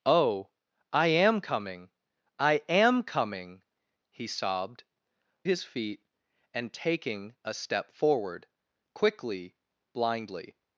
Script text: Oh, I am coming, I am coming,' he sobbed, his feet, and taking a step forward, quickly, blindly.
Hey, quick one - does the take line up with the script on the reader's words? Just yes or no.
yes